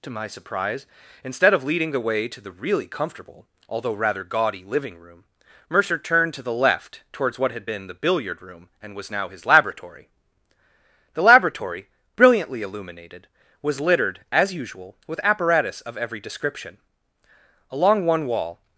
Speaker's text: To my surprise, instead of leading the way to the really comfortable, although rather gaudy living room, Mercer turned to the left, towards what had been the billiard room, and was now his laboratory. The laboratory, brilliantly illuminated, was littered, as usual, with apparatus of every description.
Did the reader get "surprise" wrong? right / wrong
right